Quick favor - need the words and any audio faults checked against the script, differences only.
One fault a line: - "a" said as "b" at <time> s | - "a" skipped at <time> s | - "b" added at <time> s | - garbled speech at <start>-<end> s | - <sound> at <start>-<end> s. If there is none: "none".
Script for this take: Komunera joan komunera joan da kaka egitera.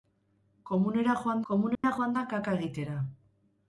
- dropout at 1.7-1.8 s